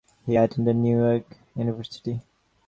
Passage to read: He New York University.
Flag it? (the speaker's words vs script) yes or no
yes